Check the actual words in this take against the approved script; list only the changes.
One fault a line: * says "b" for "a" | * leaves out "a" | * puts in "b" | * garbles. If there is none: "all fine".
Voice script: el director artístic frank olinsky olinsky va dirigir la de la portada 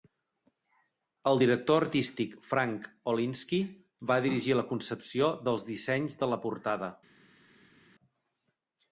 * leaves out "olinsky"
* puts in "concepció dels dissenys"